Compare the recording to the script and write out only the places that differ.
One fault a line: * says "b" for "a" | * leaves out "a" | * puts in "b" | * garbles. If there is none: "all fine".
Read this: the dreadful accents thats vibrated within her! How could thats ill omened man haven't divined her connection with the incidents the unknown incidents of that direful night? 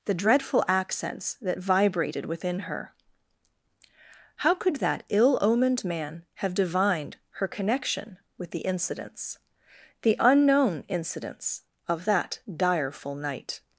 * says "that" for "thats"
* says "that" for "thats"
* says "have" for "haven't"